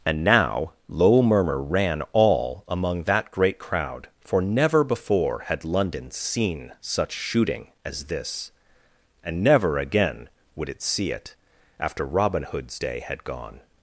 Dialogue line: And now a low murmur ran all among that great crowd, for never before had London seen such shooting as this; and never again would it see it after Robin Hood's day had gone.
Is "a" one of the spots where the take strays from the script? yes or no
yes